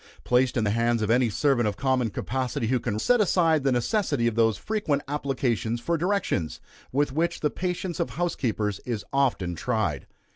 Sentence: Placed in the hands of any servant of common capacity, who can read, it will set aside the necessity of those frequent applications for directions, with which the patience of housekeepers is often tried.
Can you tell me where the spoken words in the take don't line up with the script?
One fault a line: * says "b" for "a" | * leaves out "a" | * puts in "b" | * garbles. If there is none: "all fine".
* leaves out "read it will"